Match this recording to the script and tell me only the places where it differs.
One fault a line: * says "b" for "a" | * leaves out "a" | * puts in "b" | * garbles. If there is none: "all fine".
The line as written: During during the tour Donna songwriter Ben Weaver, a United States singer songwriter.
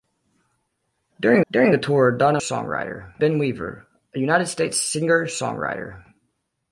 all fine